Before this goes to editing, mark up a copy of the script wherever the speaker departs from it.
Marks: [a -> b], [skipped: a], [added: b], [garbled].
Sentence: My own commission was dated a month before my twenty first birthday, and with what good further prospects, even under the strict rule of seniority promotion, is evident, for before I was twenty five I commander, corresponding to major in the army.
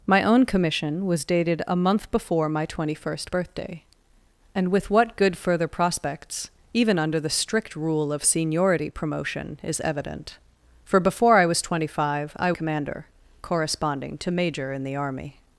My own commission was dated a month before my twenty first birthday, and with what good further prospects, even under the strict rule of seniority promotion, is evident, for before I was twenty five I commander, corresponding to major in the army.